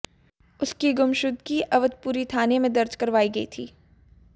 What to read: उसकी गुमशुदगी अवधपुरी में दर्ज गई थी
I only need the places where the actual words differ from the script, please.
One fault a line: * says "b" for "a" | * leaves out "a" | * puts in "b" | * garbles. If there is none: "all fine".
* puts in "थाने"
* puts in "करवाई"